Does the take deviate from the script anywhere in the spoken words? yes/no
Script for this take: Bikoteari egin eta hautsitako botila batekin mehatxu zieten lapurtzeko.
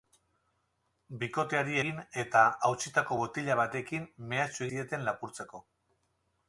no